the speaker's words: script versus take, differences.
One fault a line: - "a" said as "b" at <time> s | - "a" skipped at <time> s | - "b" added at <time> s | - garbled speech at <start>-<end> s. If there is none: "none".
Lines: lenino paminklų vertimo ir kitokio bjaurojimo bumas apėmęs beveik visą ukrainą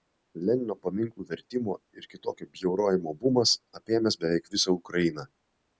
none